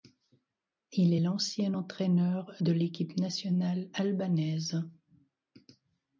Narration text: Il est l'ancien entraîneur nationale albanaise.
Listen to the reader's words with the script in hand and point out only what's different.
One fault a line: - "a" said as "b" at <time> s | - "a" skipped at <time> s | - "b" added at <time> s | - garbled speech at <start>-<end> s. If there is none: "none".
- "de l'équipe" added at 2.6 s